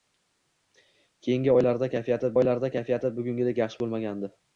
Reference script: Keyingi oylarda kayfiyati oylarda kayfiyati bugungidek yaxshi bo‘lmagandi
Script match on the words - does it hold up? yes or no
yes